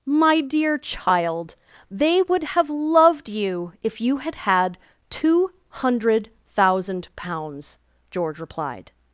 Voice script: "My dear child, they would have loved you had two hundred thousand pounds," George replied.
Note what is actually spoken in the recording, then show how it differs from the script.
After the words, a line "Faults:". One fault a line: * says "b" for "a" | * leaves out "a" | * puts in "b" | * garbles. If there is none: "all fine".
"My dear child, they would have loved you if you had had two hundred thousand pounds," George replied.
Faults:
* puts in "if you had"